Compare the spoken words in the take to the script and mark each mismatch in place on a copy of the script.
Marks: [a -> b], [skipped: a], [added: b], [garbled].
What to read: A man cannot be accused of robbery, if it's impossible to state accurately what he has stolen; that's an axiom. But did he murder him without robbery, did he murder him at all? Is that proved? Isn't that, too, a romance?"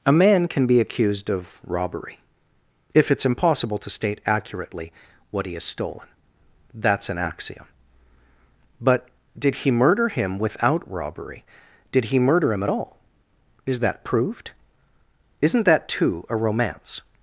A man [cannot -> can] be accused of robbery, if it's impossible to state accurately what he has stolen; that's an axiom. But did he murder him without robbery, did he murder him at all? Is that proved? Isn't that, too, a romance?"